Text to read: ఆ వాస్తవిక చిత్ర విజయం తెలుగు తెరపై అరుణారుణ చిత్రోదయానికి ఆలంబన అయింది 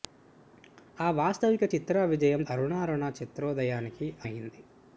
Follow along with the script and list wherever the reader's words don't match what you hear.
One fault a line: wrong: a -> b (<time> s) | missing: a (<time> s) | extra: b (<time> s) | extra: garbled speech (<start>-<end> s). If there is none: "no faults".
missing: తెలుగు తెరపై (2.4 s)
missing: ఆలంబన (4.1 s)